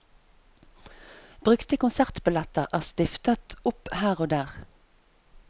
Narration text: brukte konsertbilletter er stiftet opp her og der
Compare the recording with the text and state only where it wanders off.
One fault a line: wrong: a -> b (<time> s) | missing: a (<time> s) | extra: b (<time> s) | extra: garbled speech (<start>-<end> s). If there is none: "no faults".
no faults